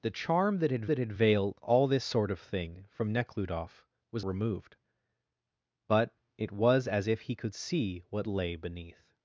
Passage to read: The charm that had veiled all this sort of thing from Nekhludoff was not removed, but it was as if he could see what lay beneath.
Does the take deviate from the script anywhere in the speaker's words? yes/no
yes